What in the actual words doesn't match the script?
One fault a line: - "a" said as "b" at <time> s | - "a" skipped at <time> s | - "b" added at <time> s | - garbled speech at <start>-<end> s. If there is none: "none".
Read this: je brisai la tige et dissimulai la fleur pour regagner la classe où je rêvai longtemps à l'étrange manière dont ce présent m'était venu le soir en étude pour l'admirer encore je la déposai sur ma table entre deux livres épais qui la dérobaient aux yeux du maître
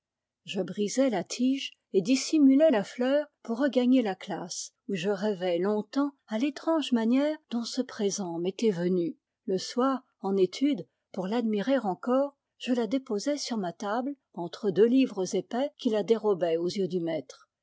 none